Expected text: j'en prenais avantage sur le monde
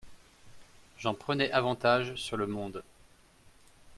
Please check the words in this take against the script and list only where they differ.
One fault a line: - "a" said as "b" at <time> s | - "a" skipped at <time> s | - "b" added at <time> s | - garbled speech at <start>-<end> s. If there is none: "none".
none